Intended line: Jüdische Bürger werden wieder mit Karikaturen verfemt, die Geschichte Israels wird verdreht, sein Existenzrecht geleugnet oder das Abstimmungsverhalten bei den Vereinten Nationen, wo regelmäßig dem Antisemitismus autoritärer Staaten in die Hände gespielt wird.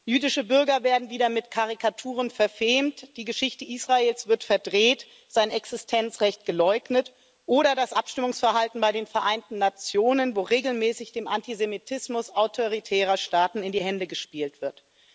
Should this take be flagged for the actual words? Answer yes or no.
no